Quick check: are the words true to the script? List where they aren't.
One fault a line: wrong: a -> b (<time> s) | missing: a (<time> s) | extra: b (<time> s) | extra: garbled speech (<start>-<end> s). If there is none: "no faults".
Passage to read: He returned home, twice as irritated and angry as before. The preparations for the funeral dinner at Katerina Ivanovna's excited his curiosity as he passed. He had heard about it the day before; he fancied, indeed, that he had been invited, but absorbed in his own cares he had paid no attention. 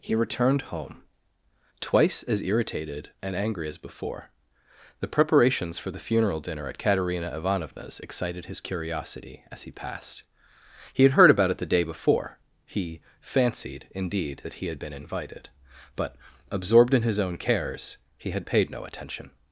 no faults